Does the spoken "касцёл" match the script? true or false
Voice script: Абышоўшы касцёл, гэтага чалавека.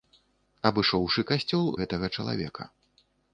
true